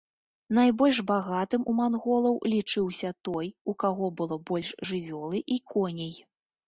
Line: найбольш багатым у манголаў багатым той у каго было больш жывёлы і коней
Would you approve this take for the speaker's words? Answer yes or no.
no